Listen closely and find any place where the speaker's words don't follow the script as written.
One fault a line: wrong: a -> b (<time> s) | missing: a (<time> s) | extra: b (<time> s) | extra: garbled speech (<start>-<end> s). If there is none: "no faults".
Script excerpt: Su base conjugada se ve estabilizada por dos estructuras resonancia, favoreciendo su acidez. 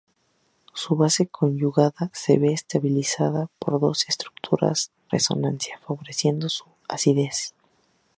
no faults